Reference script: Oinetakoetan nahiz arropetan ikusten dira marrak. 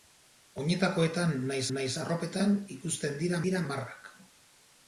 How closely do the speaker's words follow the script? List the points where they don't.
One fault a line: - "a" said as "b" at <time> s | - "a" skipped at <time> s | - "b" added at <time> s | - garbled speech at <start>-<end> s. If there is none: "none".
- "nahiz" added at 1.8 s
- "dira" added at 3.5 s